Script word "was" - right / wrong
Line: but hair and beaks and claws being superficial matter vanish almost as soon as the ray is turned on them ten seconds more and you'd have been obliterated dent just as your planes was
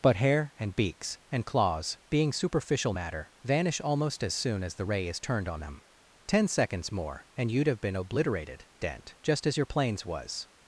right